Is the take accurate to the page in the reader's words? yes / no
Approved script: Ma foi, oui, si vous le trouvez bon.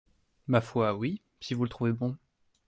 yes